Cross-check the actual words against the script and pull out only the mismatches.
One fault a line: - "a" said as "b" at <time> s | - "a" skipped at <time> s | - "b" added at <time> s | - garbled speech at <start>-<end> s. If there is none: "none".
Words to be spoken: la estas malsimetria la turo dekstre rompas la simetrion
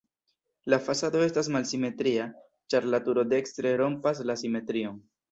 - "fasado" added at 0.8 s
- "ĉar" added at 2.7 s